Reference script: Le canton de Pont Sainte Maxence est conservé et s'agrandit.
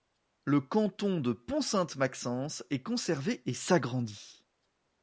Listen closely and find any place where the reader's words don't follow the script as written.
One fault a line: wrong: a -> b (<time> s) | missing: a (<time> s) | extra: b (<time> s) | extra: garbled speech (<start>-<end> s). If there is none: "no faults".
no faults